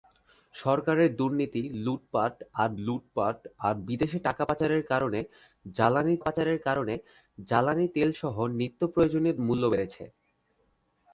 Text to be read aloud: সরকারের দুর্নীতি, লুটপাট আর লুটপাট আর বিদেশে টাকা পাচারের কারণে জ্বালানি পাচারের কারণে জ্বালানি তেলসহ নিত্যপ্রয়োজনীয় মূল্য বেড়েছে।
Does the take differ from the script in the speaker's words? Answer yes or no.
no